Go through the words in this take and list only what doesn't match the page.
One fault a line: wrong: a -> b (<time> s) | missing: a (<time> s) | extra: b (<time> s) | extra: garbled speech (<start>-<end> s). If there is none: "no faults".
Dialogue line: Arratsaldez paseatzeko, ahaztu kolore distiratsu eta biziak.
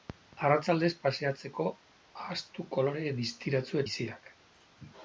missing: eta (3.8 s)